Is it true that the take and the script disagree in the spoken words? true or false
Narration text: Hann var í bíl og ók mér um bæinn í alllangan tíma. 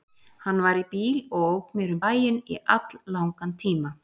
false